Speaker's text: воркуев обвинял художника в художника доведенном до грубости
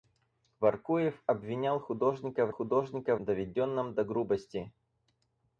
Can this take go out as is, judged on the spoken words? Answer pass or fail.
pass